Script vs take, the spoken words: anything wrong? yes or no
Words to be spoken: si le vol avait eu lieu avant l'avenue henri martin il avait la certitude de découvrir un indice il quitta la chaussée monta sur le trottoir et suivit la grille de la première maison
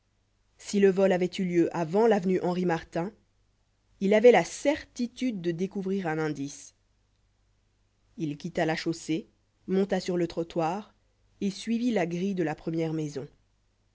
no